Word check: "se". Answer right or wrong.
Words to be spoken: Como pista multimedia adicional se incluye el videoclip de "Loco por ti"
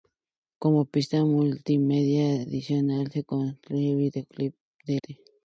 right